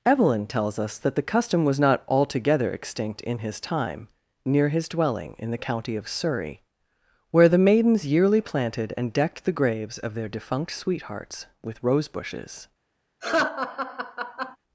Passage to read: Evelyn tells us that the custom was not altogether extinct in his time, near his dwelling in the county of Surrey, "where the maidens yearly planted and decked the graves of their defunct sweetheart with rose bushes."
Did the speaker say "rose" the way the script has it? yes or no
yes